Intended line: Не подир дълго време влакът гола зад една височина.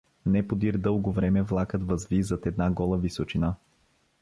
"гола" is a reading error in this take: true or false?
true